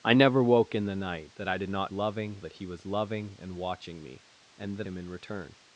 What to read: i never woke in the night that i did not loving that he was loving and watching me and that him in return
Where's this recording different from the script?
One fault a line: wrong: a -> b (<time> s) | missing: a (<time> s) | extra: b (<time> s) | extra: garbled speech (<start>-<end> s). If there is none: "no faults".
no faults